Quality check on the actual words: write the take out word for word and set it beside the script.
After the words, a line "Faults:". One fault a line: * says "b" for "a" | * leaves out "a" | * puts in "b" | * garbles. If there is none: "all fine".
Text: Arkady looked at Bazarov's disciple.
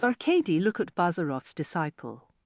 Arkady look at Bazarov's disciple.
Faults:
* says "look" for "looked"